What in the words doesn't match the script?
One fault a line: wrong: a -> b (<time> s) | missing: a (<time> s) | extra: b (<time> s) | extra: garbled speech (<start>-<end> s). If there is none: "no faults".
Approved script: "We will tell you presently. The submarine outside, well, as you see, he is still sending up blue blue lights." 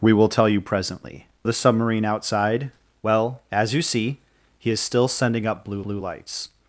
no faults